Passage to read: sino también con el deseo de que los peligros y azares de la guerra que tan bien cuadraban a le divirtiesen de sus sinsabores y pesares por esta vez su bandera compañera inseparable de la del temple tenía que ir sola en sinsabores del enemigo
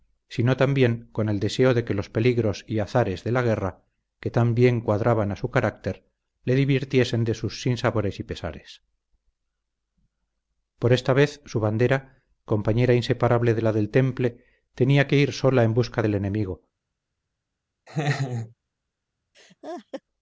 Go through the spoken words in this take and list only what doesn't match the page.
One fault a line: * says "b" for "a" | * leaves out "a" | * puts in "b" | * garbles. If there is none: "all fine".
* puts in "su carácter"
* says "busca" for "sinsabores"